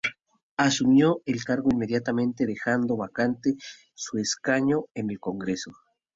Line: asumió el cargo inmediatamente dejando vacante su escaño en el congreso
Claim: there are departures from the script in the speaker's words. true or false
false